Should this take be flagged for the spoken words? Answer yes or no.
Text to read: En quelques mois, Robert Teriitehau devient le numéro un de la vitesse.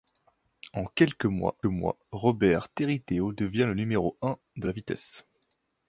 yes